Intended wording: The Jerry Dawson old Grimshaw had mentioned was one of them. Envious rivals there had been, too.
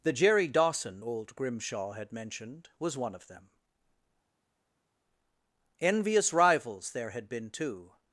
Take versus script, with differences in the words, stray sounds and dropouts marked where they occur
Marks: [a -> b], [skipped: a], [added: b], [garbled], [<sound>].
The Jerry Dawson old Grimshaw had mentioned was one of them. Envious rivals there had been, too.